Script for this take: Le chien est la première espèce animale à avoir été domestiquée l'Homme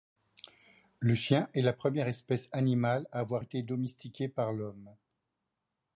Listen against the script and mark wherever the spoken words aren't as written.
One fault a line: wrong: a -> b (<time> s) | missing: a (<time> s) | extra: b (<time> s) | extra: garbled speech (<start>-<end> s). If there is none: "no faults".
extra: par (4.3 s)